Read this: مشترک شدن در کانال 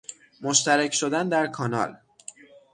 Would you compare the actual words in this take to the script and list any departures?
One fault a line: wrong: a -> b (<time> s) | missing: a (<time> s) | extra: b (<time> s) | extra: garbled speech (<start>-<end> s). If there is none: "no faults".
no faults